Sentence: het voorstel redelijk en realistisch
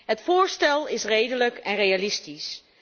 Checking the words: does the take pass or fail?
fail